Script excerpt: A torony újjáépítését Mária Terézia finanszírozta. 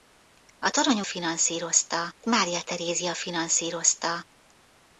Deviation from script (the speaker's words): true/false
true